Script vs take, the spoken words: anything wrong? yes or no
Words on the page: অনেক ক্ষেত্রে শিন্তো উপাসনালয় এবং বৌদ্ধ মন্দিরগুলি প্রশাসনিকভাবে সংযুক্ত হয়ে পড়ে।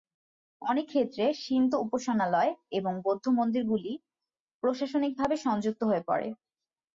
no